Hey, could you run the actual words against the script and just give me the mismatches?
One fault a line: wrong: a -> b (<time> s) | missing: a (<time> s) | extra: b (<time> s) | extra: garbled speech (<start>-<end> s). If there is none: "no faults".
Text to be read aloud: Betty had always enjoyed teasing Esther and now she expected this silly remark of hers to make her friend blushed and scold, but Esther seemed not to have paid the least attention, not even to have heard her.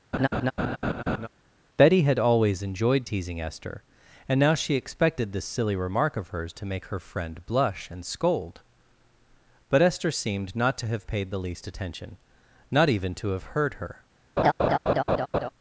wrong: blushed -> blush (7.5 s)